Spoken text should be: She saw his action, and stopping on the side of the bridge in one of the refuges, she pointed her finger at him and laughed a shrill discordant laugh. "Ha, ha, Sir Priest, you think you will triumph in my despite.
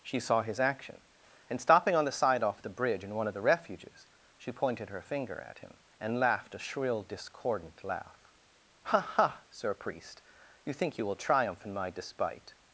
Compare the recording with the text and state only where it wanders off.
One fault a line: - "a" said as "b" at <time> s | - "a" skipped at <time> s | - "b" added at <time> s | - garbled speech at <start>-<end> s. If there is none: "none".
- "of" said as "off" at 2.4 s